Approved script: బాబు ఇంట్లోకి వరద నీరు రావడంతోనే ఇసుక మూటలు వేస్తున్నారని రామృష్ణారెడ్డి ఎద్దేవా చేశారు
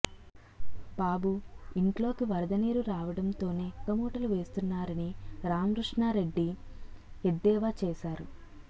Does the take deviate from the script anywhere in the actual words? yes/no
yes